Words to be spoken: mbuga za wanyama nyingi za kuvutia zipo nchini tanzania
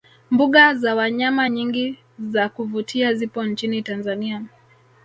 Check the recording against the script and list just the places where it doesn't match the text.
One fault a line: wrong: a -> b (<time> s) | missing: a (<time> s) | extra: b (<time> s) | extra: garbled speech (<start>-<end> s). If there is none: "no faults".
no faults